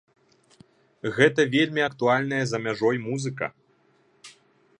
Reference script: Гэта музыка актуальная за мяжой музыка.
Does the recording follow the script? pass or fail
fail